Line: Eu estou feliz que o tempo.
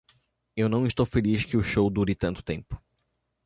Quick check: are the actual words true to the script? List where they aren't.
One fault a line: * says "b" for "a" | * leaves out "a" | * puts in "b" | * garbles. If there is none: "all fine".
* puts in "não"
* puts in "show dure tanto"